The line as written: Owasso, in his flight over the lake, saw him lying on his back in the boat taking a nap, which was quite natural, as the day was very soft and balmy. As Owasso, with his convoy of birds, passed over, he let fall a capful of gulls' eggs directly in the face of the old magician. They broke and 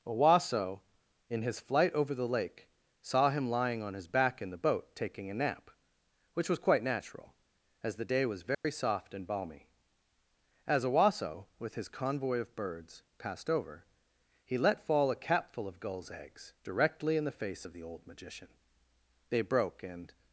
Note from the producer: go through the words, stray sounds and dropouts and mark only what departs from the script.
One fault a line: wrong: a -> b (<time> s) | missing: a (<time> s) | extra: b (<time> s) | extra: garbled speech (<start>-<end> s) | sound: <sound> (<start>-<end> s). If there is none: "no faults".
sound: dropout (8.5-8.6 s)